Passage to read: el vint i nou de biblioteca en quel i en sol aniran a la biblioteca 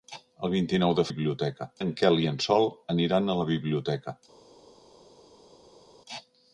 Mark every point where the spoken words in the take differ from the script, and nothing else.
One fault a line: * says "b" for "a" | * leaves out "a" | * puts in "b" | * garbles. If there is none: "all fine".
all fine